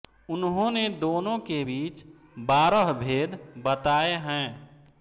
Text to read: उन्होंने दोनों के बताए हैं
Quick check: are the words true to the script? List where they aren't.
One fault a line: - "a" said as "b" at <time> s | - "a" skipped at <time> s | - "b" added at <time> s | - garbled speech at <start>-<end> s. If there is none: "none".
- "बीच बारह भेद" added at 1.6 s